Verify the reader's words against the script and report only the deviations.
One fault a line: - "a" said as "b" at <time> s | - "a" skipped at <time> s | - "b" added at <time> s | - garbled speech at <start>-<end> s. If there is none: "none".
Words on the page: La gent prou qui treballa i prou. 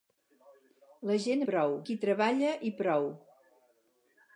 none